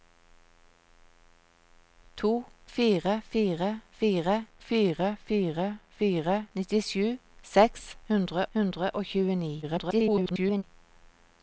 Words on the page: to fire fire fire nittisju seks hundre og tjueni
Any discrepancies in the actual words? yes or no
yes